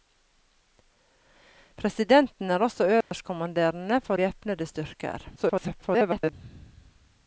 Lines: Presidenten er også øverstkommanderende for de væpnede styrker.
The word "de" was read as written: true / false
false